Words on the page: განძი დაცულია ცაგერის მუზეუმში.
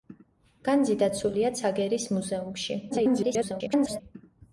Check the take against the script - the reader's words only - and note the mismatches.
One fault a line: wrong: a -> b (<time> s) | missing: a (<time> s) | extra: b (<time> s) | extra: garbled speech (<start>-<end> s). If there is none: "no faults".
extra: garbled speech (2.9-4.0 s)